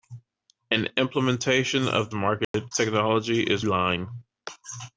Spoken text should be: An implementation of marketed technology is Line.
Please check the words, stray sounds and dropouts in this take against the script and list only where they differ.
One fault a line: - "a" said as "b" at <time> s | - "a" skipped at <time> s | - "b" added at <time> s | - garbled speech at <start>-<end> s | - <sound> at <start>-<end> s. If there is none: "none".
- dropout at 2.4-2.5 s